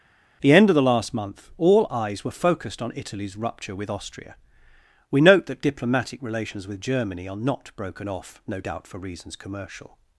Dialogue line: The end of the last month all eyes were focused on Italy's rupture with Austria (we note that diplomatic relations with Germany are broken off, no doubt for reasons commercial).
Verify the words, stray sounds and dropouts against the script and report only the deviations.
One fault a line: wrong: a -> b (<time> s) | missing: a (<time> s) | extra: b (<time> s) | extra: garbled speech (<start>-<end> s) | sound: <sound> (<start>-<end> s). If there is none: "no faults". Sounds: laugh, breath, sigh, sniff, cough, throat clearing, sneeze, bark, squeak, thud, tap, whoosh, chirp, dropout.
extra: not (7.4 s)